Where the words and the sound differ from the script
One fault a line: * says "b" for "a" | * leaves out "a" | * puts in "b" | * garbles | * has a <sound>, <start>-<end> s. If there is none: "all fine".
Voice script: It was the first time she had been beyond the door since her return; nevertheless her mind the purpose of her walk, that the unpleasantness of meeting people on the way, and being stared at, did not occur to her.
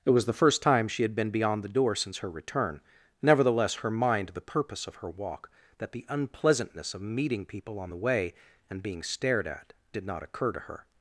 all fine